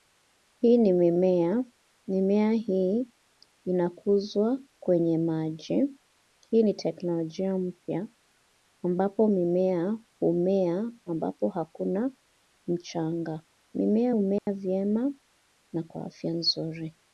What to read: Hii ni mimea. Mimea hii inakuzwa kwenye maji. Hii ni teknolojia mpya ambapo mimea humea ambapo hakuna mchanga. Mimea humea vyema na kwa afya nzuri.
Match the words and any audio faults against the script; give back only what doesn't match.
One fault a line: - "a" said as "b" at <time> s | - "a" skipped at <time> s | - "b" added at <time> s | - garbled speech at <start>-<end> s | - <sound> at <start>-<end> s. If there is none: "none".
- dropout at 14.4-14.5 s